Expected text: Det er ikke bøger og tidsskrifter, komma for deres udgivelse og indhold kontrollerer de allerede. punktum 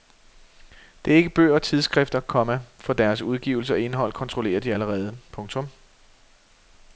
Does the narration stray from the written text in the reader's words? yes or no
no